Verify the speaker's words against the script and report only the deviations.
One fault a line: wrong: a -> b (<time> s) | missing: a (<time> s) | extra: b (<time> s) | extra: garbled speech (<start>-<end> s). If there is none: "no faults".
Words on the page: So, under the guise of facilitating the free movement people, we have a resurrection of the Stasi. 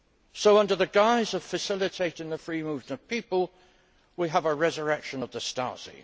extra: of (2.9 s)